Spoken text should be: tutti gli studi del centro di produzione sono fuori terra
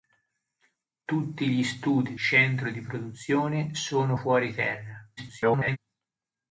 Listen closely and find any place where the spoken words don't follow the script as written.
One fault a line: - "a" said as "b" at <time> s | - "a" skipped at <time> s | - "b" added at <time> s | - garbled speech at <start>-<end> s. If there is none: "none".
- "del" skipped at 2.1 s
- garbled speech at 5.2-5.8 s